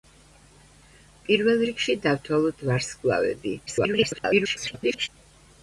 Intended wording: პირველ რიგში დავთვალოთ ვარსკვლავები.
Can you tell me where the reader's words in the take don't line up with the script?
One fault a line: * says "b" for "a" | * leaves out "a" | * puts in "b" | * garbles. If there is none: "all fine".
* garbles